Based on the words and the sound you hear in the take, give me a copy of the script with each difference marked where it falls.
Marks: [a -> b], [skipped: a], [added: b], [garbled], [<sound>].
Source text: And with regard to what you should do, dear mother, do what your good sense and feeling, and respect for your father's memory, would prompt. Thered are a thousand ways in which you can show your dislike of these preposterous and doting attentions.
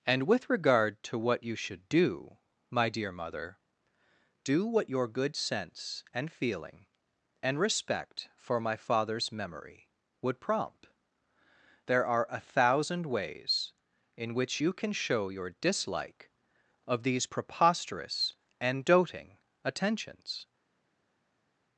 And with regard to what you should do, [added: my] dear mother, do what your good sense and feeling, and respect for [your -> my] father's memory, would prompt. [Thered -> There] are a thousand ways in which you can show your dislike of these preposterous and doting attentions.